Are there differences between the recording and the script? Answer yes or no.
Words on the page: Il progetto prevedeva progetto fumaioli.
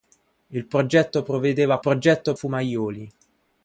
no